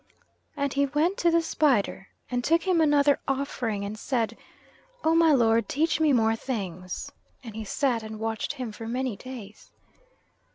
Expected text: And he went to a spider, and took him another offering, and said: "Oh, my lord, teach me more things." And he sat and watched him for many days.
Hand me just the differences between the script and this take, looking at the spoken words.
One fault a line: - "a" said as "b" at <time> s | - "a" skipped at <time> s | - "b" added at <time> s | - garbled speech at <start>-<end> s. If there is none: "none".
- "a" said as "the" at 1.3 s